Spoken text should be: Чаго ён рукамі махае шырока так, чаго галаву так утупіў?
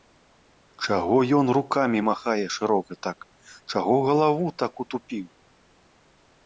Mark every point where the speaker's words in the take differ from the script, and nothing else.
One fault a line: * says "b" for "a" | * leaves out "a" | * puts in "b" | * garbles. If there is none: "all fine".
all fine